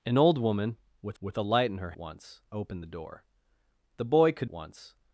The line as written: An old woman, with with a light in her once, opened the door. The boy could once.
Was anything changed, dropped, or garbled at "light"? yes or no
no